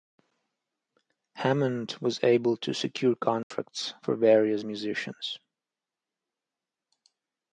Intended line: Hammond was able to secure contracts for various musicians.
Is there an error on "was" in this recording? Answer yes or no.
no